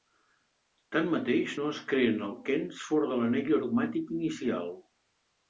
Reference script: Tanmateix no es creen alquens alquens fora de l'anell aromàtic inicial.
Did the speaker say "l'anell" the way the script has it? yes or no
yes